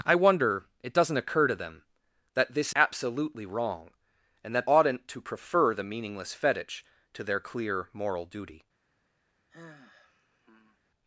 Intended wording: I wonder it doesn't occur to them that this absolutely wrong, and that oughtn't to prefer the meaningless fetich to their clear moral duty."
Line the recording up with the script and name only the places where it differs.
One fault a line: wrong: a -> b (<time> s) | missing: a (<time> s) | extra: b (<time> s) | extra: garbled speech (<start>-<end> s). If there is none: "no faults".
no faults